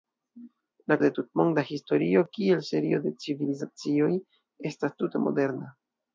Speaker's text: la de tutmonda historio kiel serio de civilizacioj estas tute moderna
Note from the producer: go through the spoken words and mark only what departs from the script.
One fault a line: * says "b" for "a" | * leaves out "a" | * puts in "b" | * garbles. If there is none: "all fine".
all fine